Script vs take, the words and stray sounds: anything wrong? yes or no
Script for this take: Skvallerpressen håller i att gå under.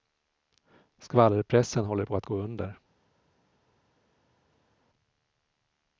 yes